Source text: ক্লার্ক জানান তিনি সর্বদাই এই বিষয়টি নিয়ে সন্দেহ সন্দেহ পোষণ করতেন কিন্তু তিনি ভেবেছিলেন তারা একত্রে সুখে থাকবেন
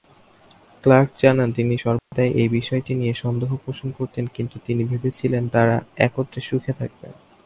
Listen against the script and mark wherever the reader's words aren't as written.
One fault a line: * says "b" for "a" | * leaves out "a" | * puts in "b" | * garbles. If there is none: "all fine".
* leaves out "সন্দেহ"